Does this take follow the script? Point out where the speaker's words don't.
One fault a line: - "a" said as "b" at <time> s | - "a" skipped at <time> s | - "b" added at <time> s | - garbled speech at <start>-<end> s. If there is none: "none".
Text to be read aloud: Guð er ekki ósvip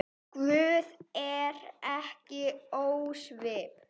none